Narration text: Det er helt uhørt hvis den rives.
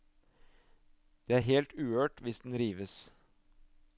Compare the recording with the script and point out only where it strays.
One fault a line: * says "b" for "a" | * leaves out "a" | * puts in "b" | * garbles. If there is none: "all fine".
all fine